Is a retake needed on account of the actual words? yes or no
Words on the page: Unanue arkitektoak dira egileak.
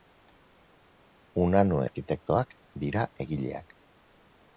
no